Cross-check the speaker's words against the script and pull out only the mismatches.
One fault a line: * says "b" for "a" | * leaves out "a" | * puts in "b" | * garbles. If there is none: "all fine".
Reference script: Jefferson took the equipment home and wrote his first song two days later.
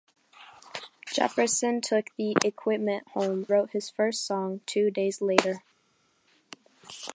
* leaves out "and"